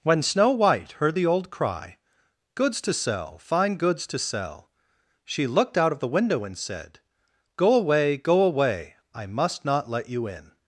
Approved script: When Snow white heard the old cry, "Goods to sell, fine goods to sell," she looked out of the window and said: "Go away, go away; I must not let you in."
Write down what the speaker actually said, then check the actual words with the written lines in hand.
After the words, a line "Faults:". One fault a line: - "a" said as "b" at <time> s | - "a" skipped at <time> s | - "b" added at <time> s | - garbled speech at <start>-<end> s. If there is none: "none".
When Snow white heard the old cry, "Goods to sell, fine goods to sell," she looked out of the window and said: "Go away, go away; I must not let you in."
Faults:
none